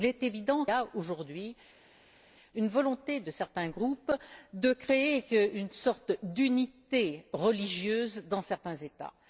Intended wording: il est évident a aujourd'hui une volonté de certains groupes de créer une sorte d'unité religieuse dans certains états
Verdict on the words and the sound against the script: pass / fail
pass